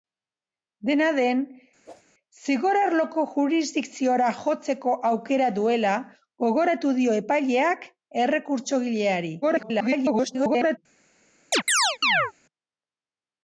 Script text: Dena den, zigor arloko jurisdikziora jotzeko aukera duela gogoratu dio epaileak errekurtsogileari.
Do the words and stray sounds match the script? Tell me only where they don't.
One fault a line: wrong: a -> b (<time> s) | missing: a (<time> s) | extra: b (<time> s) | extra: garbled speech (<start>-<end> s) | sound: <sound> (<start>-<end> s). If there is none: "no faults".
sound: whoosh (1.9-2.0 s)
extra: garbled speech (9.4-10.8 s)
sound: chirp (11.5-12.3 s)